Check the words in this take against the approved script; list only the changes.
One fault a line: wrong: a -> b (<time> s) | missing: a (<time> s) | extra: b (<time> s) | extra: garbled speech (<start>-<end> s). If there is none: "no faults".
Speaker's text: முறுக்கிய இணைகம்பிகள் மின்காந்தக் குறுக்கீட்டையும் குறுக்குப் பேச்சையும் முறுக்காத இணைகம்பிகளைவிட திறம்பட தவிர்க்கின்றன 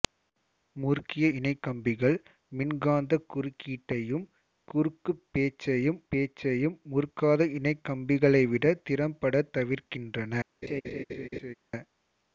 extra: பேச்சையும் (6.1 s)